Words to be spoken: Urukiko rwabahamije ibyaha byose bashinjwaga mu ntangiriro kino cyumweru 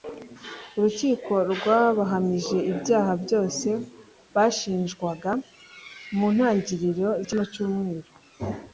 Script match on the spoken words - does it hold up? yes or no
yes